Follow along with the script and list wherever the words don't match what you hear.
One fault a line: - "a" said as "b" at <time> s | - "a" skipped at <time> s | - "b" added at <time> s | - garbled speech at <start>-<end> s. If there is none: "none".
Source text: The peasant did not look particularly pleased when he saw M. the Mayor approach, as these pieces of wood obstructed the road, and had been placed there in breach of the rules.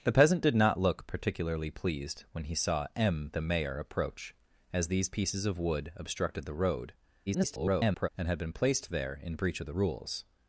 - garbled speech at 7.3-8.1 s